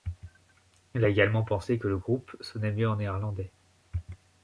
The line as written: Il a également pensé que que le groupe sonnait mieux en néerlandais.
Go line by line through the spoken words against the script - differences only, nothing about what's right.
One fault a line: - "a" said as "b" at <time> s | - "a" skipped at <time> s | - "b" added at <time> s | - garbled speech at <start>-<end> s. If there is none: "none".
- "que" skipped at 1.9 s